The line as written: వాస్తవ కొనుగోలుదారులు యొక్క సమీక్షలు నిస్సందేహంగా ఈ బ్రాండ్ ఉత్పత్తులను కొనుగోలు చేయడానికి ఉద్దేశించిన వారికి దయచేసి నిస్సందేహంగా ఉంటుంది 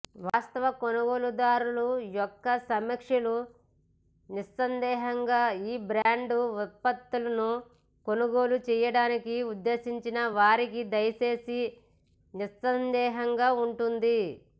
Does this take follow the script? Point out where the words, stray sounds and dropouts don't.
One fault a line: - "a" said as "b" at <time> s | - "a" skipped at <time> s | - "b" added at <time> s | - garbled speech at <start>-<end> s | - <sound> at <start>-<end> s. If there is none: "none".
- dropout at 6.0-6.1 s